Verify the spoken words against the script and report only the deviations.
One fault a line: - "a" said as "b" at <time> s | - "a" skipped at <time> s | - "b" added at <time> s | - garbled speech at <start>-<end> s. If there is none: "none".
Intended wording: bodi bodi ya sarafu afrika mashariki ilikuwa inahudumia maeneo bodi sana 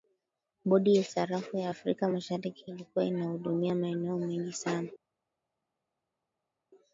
- "bodi" skipped at 0.9 s
- "ya" added at 1.6 s
- "bodi" said as "mengi" at 4.2 s